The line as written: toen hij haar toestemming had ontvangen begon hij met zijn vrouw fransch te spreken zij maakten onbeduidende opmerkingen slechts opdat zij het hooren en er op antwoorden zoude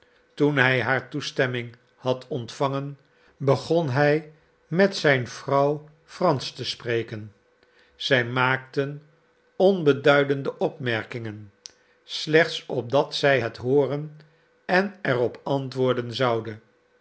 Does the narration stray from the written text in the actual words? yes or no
no